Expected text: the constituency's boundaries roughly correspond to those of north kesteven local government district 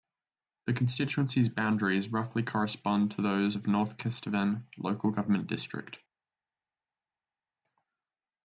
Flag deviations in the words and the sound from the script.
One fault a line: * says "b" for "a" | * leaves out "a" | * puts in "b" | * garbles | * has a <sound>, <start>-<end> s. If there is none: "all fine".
all fine